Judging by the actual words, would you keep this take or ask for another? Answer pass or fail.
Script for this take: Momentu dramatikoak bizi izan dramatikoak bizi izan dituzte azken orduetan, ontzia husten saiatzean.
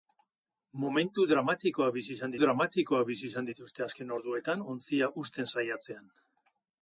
pass